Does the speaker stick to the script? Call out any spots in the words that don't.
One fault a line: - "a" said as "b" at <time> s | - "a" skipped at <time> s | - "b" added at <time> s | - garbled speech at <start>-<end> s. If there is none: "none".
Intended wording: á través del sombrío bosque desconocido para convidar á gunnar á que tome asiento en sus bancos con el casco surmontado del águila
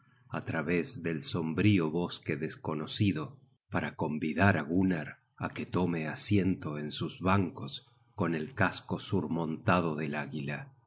none